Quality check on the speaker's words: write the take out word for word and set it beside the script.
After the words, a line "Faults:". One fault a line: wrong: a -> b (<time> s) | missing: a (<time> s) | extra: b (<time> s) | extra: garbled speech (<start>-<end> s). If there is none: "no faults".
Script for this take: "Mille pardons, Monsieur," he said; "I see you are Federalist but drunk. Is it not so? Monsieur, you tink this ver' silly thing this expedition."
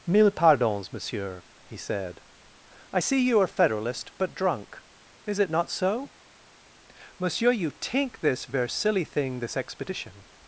"Mille pardons, Monsieur," he said; "I see you are Federalist but drunk. Is it not so? Monsieur, you tink this ver' silly thing this expedition."
Faults:
no faults